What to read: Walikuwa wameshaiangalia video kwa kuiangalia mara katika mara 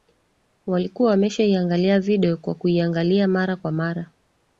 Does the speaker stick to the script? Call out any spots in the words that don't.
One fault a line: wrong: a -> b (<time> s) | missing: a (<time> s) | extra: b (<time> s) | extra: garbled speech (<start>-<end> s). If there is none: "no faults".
wrong: katika -> kwa (3.5 s)